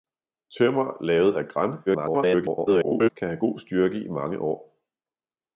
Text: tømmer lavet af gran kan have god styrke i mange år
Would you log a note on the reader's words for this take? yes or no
yes